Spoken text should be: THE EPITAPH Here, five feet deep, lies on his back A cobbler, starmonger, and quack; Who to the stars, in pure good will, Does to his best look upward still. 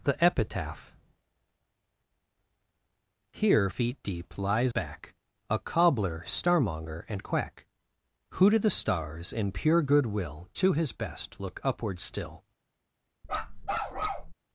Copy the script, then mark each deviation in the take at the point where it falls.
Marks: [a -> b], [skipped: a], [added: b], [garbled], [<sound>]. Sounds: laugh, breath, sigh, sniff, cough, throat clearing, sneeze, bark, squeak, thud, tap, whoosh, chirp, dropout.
THE EPITAPH Here, [skipped: five] feet deep, lies [skipped: on his] back A cobbler, starmonger, and quack; Who to the stars, in pure good will, [skipped: Does] to his best look upward still. [bark]